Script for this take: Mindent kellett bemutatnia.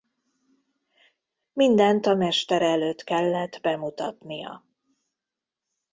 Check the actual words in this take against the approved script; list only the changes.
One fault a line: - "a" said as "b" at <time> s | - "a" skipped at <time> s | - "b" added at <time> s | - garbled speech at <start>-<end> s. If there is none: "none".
- "a mestere előtt" added at 2.0 s